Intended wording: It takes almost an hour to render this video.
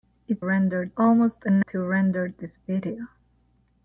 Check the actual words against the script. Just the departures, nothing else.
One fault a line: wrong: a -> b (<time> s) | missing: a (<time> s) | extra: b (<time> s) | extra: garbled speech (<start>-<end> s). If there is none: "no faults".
wrong: takes -> render (0.4 s)
missing: hour (1.6 s)